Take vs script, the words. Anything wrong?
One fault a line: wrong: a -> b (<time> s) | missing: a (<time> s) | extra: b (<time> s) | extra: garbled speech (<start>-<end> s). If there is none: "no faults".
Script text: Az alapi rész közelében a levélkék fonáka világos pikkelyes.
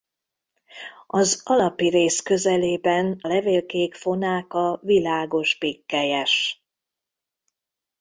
missing: a (3.2 s)